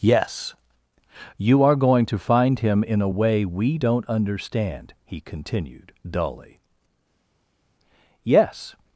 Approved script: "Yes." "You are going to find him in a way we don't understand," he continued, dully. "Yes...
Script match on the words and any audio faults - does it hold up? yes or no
yes